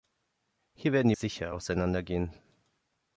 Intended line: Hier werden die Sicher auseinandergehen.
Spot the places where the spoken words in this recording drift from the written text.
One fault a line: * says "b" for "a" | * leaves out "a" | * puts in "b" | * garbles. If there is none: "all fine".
all fine